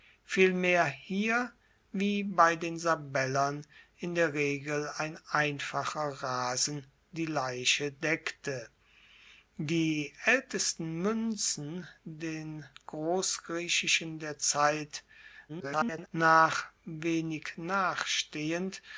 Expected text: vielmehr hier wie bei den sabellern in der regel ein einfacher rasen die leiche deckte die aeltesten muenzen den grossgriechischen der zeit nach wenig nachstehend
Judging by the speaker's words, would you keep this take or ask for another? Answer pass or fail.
fail